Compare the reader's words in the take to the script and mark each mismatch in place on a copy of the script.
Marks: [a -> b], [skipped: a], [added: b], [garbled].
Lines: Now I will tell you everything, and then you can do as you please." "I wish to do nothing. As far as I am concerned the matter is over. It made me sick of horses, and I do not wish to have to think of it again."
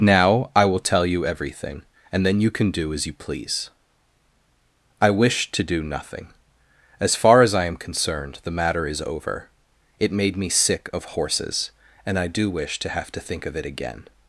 Now I will tell you everything, and then you can do as you please." "I wish to do nothing. As far as I am concerned the matter is over. It made me sick of horses, and I do [skipped: not] wish to have to think of it again."